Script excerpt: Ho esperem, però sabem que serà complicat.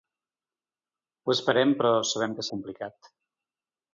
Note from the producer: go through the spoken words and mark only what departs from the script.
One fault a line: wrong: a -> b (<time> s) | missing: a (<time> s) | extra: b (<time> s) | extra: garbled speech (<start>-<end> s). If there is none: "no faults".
missing: serà (2.5 s)